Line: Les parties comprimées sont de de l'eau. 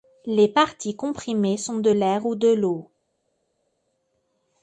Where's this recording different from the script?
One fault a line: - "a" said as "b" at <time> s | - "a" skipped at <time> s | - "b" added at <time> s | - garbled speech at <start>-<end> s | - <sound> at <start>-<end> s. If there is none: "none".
- "l'air ou" added at 1.9 s